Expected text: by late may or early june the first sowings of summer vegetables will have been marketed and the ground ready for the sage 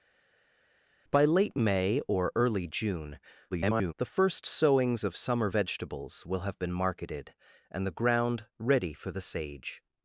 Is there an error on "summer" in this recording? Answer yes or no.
no